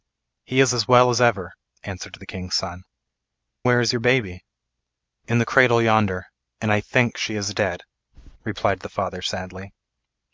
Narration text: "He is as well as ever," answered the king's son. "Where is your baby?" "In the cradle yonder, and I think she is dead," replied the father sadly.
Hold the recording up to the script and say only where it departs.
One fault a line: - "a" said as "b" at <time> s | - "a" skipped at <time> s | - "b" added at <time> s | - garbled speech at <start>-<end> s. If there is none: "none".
none